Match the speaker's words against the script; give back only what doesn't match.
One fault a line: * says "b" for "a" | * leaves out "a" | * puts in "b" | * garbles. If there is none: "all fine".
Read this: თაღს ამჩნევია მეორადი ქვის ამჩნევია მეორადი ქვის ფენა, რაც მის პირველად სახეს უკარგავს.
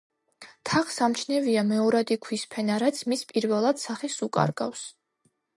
* leaves out "ამჩნევია მეორადი ქვის"